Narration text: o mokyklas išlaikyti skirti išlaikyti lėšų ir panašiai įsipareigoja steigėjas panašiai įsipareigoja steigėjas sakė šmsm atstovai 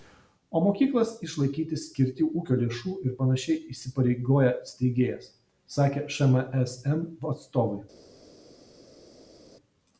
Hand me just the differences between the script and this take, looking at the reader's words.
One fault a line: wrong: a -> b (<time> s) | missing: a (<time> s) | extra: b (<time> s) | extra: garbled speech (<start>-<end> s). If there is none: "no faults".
wrong: išlaikyti -> ūkio (2.3 s)
missing: panašiai įsipareigoja steigėjas (5.3 s)